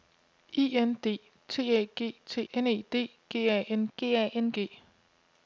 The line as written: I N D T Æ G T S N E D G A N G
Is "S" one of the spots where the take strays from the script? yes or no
yes